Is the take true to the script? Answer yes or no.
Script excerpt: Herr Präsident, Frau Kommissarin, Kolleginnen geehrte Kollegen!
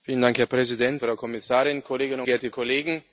yes